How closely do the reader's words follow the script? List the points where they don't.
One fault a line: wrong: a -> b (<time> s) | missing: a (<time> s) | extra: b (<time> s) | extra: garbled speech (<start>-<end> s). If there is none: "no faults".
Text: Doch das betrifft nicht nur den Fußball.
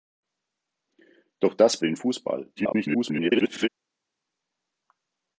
missing: betrifft nicht nur (1.8 s)
extra: garbled speech (2.6-3.7 s)